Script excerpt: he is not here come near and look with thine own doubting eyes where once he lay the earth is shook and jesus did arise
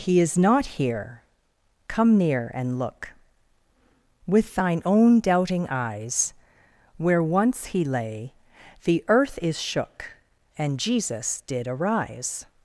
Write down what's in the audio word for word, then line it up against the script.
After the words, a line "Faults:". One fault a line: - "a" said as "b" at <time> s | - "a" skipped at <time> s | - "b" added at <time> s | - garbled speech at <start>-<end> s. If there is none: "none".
he is not here come near and look with thine own doubting eyes where once he lay the earth is shook and jesus did arise
Faults:
none